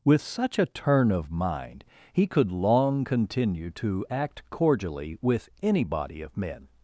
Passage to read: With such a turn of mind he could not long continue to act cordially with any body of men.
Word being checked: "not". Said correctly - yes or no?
no